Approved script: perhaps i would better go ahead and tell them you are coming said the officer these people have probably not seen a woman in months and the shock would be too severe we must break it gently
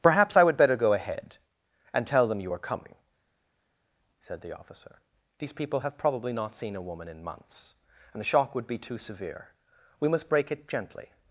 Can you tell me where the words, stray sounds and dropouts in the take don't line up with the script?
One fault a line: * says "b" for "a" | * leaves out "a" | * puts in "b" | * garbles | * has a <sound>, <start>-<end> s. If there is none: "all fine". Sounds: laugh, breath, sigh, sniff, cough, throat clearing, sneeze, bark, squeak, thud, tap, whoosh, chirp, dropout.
all fine